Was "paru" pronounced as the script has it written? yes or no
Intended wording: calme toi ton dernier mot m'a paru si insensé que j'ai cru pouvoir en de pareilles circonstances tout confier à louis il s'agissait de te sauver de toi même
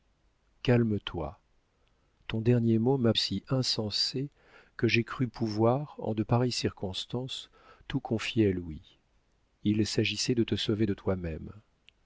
no